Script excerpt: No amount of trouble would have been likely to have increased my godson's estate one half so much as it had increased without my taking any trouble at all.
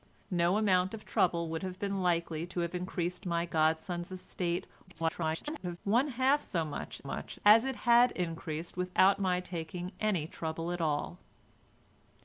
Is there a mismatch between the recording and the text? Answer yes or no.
yes